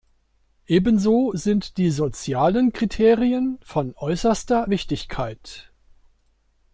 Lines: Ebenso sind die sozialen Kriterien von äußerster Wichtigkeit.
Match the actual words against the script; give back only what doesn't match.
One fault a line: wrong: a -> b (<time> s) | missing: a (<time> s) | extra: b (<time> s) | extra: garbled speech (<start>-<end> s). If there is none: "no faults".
no faults